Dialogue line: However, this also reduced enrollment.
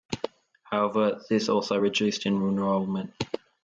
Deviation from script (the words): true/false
false